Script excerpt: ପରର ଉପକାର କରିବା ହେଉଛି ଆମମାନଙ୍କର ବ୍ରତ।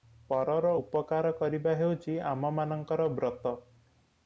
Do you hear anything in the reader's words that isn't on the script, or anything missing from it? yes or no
no